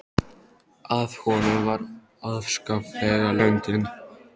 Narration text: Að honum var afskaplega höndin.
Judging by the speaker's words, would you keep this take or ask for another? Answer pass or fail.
pass